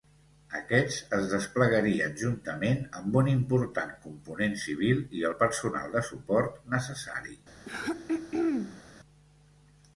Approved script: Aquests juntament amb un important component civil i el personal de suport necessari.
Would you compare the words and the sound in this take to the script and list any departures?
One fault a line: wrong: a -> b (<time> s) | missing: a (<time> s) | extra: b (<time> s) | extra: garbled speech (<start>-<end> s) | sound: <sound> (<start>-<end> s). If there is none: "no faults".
extra: es desplegarien (1.2 s)
sound: throat clearing (7.6-8.8 s)